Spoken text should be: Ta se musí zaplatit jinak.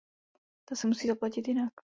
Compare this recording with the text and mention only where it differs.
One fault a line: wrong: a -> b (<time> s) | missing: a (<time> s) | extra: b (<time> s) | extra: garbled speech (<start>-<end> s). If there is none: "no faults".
no faults